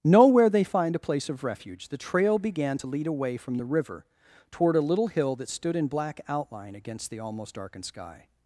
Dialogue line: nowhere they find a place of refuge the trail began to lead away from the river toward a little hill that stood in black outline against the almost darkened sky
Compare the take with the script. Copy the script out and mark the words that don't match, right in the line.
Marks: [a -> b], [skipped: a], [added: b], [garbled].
nowhere they find a place of refuge the trail began to lead away from the river toward a little hill that stood in black outline against the almost darkened sky